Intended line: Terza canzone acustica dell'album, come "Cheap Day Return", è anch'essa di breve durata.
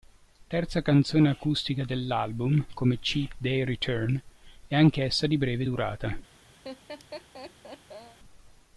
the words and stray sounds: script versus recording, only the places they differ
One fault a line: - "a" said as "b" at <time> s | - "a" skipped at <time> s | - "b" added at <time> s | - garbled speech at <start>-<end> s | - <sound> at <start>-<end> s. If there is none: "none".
- laugh at 6.6-8.2 s